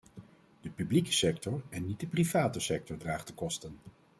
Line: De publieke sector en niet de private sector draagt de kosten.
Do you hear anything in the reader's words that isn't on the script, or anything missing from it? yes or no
no